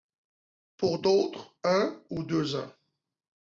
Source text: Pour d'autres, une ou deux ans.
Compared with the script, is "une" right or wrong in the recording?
wrong